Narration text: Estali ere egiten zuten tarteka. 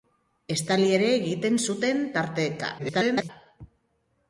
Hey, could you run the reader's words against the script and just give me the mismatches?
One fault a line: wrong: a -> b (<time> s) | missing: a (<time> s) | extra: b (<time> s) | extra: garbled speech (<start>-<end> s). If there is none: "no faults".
extra: garbled speech (2.8-3.3 s)